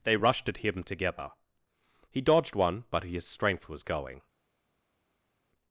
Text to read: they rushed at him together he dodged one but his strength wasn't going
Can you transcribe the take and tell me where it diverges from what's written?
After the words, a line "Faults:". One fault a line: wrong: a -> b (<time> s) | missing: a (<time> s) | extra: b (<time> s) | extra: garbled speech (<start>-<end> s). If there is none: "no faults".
they rushed at him together he dodged one but his strength was going
Faults:
wrong: wasn't -> was (3.7 s)